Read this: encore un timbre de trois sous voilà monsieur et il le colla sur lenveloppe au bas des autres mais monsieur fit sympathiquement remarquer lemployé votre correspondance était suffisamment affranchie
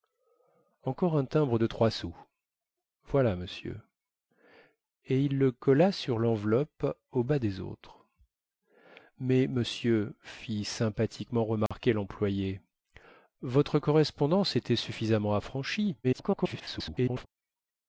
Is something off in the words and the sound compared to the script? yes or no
yes